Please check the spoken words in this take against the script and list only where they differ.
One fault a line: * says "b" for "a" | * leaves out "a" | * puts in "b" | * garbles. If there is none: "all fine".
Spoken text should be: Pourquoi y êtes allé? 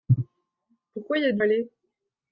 all fine